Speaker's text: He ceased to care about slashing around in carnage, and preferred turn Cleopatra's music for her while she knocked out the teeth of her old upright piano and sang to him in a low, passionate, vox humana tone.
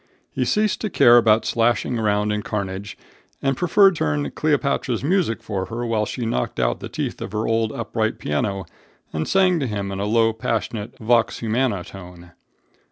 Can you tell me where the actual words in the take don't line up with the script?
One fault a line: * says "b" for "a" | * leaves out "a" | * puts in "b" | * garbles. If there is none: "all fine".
all fine